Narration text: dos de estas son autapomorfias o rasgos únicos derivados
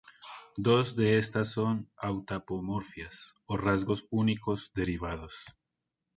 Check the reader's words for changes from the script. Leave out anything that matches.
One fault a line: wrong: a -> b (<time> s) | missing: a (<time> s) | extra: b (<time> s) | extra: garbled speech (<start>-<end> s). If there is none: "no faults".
no faults